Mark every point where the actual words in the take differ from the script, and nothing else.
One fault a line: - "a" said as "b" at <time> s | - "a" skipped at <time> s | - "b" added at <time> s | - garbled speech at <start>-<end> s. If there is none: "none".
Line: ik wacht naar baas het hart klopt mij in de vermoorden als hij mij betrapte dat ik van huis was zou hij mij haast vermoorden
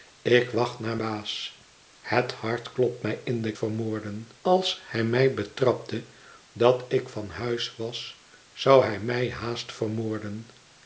none